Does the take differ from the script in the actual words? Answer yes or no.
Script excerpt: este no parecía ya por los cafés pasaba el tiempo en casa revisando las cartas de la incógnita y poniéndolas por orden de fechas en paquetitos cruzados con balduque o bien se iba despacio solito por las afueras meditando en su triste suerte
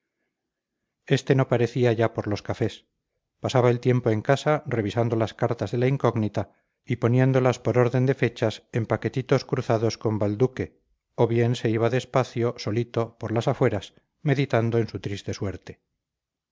no